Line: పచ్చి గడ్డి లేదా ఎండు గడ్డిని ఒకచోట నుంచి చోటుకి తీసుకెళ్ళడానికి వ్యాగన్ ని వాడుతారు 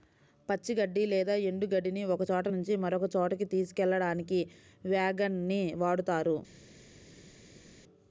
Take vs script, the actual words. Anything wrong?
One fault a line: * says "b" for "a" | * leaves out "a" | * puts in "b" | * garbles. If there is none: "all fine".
* puts in "మరొక"